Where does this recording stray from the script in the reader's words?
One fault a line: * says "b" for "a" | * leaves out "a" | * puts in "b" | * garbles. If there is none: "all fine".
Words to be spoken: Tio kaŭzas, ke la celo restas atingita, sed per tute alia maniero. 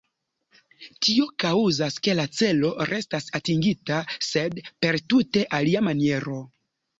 all fine